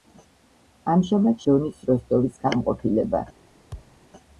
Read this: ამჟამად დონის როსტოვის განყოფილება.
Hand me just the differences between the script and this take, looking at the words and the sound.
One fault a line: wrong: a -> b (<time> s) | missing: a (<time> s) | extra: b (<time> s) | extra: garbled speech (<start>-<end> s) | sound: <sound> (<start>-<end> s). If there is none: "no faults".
sound: thud (3.7-4.0 s)